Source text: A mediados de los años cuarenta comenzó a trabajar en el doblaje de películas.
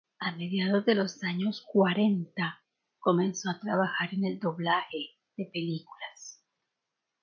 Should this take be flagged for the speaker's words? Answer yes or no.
no